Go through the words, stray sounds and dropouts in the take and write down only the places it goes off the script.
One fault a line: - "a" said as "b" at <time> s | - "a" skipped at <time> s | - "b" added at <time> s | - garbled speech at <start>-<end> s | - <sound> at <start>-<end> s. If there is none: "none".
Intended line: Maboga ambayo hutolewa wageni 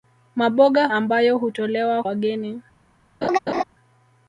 - laugh at 3.2-3.6 s